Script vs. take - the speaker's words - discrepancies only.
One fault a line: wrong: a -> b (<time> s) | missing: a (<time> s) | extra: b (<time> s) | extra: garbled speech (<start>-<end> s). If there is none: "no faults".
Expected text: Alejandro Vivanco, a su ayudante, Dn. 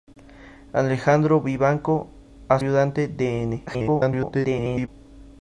missing: su (2.6 s)
extra: garbled speech (3.7-4.9 s)